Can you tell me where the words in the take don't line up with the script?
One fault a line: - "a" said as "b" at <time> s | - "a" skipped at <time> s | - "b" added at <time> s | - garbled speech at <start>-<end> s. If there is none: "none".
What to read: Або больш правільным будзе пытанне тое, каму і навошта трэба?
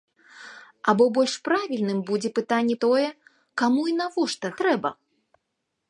none